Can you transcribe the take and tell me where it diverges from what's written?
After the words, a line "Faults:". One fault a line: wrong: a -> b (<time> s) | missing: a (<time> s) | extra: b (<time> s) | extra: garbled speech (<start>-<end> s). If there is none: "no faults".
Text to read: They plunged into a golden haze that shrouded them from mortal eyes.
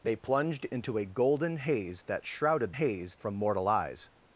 They plunged into a golden haze that shrouded haze from mortal eyes.
Faults:
wrong: them -> haze (2.7 s)